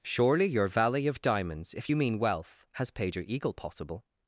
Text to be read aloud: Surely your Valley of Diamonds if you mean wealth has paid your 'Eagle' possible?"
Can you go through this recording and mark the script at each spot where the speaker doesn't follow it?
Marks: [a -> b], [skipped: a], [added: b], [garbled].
Surely your Valley of Diamonds if you mean wealth has paid your 'Eagle' possible?"